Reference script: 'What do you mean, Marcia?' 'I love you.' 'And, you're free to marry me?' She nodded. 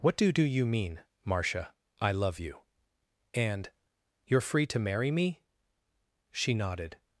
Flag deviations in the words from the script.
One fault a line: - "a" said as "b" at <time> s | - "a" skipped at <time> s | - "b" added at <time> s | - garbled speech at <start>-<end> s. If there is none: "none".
- "do" added at 0.3 s